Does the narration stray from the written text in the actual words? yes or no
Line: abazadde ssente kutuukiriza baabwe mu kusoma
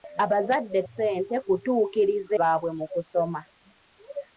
no